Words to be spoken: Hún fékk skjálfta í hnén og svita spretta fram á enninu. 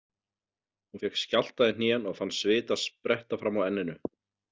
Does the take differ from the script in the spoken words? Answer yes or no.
yes